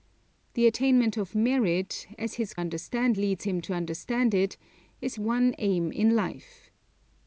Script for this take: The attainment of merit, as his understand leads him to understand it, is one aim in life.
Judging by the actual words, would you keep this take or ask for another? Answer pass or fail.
pass